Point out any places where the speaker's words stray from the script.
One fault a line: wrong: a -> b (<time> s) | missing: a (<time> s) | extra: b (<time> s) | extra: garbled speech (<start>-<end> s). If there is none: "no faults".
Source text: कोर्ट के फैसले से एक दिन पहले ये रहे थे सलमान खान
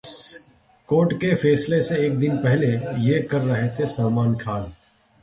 extra: कर (3.2 s)